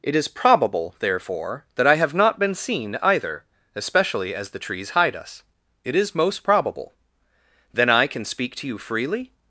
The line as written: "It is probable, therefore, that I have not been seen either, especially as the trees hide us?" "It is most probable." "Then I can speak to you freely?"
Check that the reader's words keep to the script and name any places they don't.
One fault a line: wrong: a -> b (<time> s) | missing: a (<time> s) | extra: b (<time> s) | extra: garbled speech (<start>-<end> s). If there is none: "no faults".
no faults